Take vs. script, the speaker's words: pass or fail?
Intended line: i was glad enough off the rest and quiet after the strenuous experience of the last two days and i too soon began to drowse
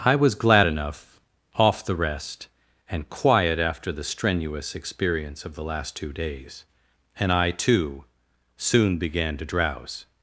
pass